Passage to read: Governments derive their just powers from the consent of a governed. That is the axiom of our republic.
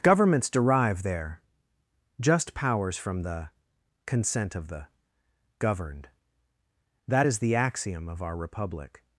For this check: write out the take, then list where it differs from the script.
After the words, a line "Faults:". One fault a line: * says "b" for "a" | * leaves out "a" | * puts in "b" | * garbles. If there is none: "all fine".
Governments derive their just powers from the consent of the governed. That is the axiom of our republic.
Faults:
* says "the" for "a"